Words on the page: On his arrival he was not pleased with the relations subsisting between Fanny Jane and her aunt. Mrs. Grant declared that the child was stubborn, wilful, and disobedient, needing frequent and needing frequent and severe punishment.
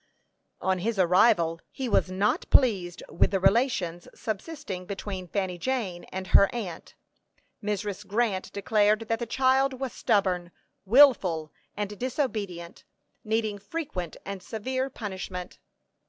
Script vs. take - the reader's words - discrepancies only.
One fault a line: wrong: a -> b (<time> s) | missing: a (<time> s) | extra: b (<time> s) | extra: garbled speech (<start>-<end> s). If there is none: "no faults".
missing: needing frequent and (14.4 s)